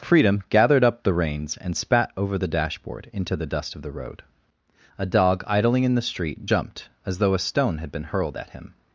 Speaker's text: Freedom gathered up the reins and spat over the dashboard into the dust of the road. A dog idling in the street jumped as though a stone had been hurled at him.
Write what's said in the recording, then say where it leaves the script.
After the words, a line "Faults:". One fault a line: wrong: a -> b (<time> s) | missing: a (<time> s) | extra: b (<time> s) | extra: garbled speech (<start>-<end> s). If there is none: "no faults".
Freedom gathered up the reins and spat over the dashboard into the dust of the road. A dog idling in the street jumped as though a stone had been hurled at him.
Faults:
no faults